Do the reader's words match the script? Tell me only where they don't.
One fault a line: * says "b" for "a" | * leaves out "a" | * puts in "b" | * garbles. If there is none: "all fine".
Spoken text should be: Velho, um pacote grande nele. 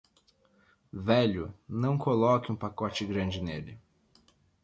* puts in "não coloque"